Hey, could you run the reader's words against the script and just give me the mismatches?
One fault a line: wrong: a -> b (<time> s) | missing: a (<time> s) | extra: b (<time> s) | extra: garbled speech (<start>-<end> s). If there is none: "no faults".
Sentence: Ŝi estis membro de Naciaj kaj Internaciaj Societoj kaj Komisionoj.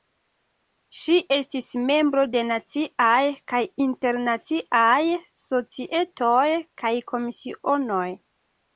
no faults